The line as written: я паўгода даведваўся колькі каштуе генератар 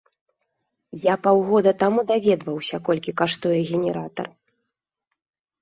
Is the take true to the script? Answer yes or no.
no